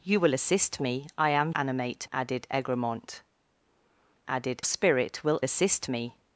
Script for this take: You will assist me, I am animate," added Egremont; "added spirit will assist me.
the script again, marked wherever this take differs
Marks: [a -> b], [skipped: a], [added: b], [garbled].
You will assist me, I am animate," added Egremont; "added spirit will assist me.